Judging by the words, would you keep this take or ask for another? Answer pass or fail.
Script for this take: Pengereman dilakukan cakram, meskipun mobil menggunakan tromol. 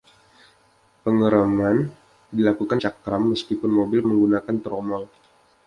pass